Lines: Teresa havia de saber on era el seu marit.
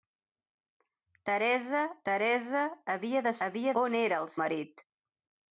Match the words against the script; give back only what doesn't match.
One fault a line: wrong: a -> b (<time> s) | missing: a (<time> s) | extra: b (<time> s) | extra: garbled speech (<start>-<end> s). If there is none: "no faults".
extra: teresa (2.1 s)
wrong: saber -> havia (3.5 s)
missing: seu (4.3 s)